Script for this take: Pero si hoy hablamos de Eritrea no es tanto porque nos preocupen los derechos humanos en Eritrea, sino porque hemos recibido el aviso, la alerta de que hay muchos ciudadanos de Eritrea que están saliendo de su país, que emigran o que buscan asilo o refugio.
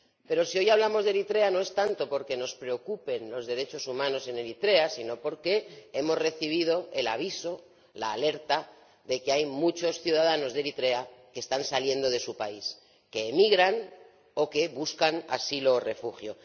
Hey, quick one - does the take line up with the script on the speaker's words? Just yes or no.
yes